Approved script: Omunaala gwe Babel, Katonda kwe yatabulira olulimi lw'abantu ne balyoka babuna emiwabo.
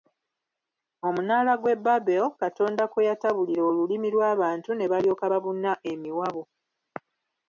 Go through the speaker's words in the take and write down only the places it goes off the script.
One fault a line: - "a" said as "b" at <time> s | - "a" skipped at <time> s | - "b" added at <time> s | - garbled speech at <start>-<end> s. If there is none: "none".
none